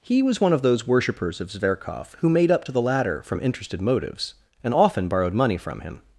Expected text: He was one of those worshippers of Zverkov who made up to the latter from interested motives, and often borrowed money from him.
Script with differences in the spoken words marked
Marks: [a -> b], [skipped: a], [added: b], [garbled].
He was one of those worshippers of Zverkov who made up to the latter from interested motives, and often borrowed money from him.